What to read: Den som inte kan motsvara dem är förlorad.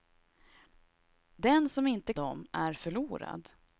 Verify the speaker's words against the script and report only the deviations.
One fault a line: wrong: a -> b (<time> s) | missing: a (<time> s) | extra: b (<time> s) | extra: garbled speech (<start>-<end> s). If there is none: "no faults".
missing: kan motsvara (2.1 s)